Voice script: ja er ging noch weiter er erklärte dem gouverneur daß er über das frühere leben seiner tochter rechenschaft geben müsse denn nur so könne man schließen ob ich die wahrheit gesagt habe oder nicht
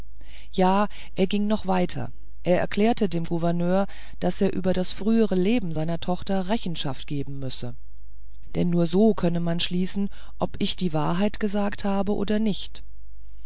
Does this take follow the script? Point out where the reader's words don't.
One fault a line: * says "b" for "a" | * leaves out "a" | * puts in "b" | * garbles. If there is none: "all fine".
all fine